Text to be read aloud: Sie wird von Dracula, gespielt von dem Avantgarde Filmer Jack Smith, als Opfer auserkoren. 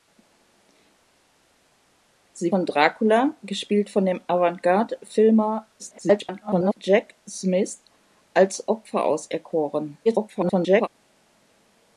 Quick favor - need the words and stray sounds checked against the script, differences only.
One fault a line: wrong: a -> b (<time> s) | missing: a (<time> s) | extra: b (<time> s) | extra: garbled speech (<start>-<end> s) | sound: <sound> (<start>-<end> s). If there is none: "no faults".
missing: wird (2.5 s)
extra: garbled speech (5.8-6.7 s)
extra: garbled speech (10.1-10.9 s)